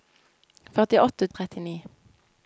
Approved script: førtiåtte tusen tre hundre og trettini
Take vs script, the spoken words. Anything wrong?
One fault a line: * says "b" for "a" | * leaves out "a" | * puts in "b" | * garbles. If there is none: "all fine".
* leaves out "tusen tre hundre"